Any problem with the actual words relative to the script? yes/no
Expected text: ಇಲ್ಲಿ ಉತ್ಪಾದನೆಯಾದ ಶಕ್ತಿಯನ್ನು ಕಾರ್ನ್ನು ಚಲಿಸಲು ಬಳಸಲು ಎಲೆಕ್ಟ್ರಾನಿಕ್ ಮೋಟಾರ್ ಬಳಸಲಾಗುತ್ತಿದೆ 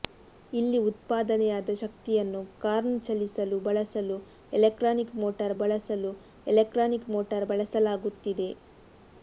yes